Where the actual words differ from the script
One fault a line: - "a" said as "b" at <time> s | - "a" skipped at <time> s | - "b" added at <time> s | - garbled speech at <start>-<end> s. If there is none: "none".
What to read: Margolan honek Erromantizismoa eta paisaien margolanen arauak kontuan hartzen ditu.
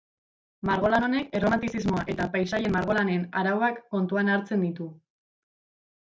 none